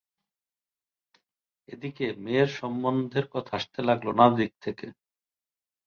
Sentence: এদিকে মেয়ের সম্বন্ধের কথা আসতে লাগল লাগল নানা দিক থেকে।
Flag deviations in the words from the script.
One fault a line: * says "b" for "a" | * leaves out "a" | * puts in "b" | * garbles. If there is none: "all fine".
* leaves out "লাগল"